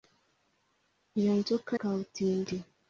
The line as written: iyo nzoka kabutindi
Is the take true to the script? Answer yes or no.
yes